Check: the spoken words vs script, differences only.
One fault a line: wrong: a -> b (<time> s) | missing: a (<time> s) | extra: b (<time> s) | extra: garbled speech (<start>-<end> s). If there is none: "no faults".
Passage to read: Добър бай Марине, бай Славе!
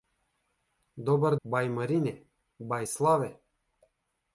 no faults